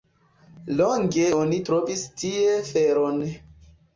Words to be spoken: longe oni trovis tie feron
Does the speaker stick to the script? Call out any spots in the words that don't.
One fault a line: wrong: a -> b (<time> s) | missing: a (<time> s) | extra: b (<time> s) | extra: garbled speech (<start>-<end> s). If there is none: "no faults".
no faults